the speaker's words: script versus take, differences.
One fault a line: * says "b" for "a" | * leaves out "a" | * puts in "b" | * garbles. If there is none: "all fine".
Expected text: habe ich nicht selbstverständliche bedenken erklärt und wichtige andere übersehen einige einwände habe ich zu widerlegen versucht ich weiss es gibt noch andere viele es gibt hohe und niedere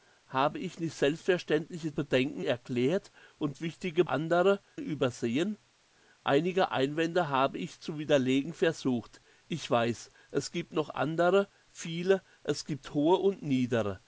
all fine